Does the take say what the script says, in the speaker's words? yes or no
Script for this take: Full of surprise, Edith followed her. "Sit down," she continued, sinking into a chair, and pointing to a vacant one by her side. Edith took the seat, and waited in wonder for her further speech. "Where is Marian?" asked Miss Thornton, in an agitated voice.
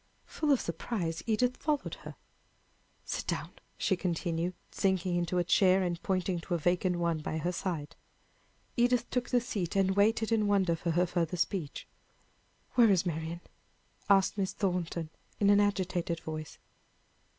yes